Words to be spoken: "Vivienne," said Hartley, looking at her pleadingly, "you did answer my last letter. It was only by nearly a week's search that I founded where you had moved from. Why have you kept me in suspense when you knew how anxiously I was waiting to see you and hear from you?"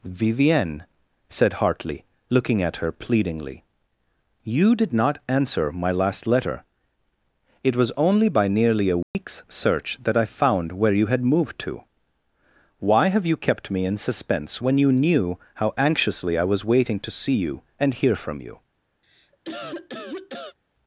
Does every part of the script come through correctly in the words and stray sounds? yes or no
no